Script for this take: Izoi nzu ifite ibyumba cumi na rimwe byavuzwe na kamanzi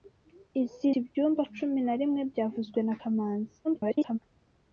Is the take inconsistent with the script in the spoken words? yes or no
yes